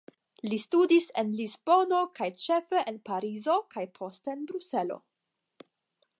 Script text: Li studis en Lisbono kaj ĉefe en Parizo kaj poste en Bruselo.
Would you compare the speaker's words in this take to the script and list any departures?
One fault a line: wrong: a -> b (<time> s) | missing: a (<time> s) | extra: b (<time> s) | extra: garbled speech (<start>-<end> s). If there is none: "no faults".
no faults